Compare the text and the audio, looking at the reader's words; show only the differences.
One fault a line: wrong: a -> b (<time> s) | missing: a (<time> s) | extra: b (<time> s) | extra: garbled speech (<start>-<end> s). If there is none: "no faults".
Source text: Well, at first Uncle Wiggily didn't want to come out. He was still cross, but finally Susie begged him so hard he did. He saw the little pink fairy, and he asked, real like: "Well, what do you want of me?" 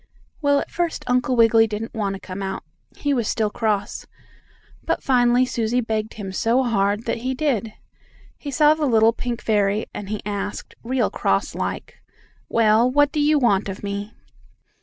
extra: that (7.0 s)
extra: cross (11.1 s)